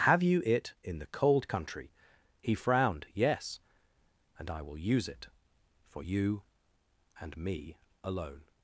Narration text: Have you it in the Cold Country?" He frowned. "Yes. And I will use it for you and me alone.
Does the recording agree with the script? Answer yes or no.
yes